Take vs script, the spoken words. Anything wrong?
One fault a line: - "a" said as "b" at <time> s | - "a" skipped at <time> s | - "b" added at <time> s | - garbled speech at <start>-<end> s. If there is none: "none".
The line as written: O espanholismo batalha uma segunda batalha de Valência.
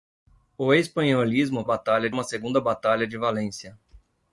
none